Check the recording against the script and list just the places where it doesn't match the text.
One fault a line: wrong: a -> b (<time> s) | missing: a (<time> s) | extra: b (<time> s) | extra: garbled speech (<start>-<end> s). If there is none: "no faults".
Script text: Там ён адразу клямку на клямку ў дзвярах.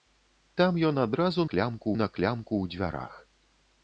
no faults